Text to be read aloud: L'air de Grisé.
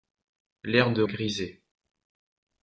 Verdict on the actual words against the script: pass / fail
pass